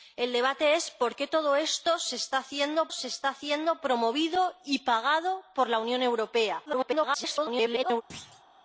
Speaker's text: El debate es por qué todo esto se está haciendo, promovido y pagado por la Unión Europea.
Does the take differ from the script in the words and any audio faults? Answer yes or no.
yes